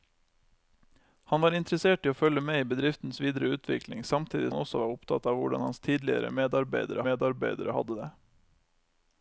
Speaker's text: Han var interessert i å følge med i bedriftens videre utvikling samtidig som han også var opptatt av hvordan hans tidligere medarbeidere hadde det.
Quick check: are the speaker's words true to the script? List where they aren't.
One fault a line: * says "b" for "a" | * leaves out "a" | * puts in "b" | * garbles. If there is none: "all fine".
* leaves out "som"
* puts in "medarbeidere"